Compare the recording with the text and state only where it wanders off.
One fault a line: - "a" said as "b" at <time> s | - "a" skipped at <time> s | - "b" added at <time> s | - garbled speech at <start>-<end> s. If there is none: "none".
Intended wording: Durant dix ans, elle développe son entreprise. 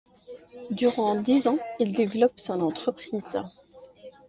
- "elle" said as "il" at 1.8 s